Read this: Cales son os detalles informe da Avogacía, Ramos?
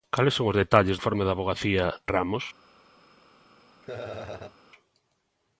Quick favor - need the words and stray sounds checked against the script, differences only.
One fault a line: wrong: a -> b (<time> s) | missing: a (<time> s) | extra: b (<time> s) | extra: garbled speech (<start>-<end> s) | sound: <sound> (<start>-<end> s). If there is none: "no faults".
sound: laugh (3.8-4.6 s)